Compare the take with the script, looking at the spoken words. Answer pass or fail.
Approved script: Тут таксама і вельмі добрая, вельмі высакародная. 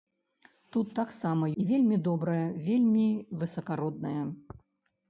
pass